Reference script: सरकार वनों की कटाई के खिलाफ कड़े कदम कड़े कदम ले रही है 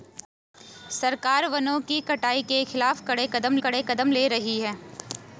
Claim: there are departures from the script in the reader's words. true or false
false